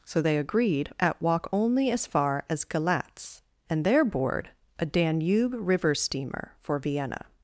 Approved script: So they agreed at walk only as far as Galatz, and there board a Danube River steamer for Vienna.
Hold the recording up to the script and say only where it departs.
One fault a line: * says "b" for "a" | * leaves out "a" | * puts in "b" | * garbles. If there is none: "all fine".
all fine